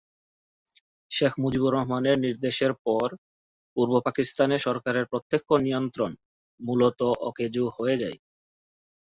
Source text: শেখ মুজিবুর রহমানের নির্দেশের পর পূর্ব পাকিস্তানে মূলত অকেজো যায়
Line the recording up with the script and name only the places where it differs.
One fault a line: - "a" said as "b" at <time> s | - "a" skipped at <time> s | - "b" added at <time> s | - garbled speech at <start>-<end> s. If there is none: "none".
- "সরকারের প্রত্যক্ষ নিয়ন্ত্রণ" added at 4.6 s
- "হয়ে" added at 7.8 s